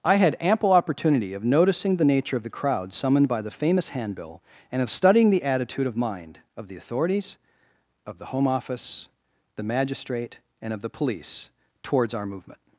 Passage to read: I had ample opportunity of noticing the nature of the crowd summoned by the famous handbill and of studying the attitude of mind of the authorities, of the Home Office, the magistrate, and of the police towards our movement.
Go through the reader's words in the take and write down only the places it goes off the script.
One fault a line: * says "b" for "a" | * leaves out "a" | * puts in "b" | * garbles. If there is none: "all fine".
all fine